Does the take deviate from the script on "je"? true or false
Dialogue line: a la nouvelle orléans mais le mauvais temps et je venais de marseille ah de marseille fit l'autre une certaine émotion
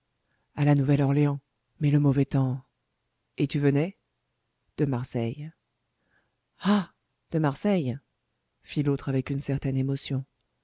true